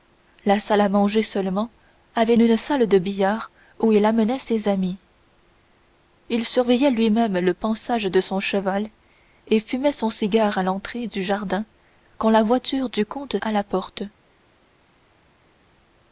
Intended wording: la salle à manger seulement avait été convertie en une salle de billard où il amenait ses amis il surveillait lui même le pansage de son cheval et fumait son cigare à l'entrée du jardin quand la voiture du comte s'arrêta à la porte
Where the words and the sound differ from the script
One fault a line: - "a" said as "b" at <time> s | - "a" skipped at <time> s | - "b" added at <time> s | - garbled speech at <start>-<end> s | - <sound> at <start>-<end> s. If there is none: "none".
- "été convertie en" skipped at 2.3 s
- "s'arrêta" skipped at 13.4 s